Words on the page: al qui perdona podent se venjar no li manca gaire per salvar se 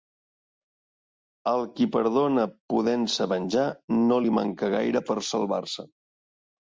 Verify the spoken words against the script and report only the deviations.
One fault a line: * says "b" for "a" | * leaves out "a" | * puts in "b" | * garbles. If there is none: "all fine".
all fine